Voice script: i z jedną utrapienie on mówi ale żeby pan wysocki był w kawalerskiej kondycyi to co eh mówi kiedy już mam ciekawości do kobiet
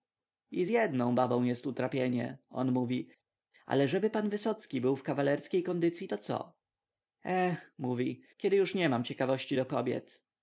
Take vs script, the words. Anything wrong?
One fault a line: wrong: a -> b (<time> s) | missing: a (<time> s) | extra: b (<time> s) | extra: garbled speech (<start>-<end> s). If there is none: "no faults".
extra: babą jest (1.2 s)
extra: nie (8.7 s)